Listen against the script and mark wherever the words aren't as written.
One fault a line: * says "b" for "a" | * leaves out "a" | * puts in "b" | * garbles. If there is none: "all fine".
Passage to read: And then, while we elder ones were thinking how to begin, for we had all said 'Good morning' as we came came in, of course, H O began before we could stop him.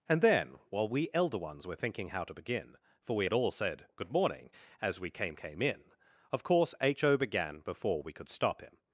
all fine